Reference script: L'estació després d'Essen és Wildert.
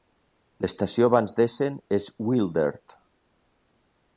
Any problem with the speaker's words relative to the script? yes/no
yes